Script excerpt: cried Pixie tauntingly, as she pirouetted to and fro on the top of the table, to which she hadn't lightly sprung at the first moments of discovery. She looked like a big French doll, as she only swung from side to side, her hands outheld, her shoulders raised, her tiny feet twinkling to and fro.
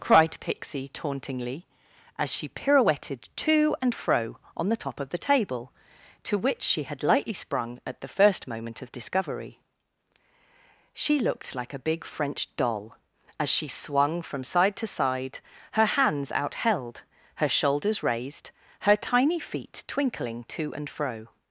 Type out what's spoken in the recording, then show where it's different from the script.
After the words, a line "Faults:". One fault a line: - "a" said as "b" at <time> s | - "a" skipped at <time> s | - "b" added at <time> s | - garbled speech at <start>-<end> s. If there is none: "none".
cried Pixie tauntingly, as she pirouetted to and fro on the top of the table, to which she had lightly sprung at the first moment of discovery. She looked like a big French doll, as she swung from side to side, her hands outheld, her shoulders raised, her tiny feet twinkling to and fro.
Faults:
- "hadn't" said as "had" at 6.8 s
- "moments" said as "moment" at 8.5 s
- "only" skipped at 13.7 s